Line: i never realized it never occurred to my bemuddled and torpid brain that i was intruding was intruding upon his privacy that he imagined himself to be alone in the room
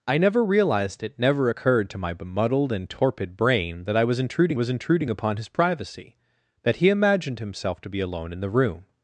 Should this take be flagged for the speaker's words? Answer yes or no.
no